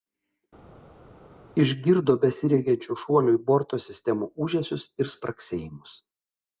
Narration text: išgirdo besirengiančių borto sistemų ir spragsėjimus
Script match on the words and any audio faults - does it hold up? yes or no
no